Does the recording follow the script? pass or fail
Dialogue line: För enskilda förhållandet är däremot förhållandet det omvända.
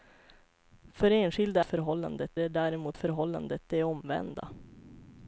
pass